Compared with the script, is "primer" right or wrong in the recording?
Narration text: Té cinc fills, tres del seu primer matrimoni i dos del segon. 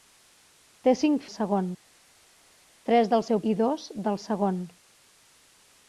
wrong